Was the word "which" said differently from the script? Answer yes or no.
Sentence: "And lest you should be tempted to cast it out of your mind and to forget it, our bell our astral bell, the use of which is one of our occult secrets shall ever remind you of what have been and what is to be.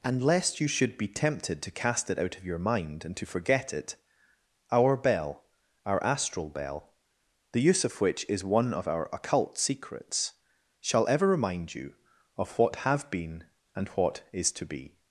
no